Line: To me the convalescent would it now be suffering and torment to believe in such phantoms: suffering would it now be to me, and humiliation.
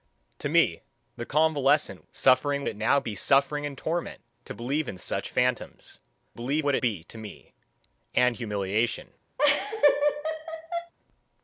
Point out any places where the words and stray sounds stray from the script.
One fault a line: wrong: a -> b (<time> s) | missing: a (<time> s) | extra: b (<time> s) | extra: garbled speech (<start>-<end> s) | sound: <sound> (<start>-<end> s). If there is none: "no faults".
wrong: would -> suffering (2.1 s)
wrong: suffering -> believe (6.3 s)
missing: now (6.8 s)
sound: laugh (9.4-10.9 s)